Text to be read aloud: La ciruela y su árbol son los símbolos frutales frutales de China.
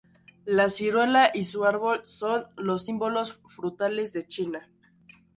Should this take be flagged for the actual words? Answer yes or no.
yes